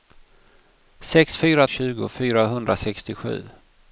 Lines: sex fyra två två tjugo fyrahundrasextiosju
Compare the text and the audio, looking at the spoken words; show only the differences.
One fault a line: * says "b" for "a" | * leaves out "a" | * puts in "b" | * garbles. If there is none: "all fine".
* leaves out "två två"